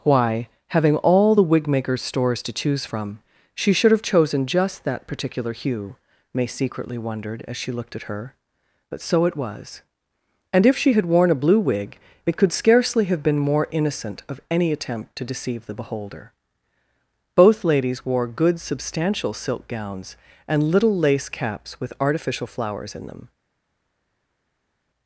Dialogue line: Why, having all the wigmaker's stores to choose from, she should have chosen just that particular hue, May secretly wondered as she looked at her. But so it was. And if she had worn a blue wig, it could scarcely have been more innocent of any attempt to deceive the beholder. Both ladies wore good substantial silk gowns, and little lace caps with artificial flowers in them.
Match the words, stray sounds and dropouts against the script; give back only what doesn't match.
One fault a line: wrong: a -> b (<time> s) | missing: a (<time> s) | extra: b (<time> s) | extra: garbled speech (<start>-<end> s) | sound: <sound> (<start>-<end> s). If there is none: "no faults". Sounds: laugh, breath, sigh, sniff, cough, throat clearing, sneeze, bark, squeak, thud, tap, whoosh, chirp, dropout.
no faults